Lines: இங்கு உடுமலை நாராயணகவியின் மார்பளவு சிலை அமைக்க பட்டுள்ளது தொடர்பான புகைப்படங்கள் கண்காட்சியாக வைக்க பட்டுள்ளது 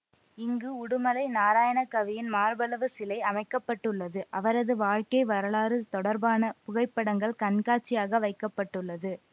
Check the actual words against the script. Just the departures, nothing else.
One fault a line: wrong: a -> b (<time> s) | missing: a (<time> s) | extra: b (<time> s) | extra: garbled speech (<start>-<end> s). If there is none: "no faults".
extra: அவரது வாழ்க்கை வரலாறு (4.3 s)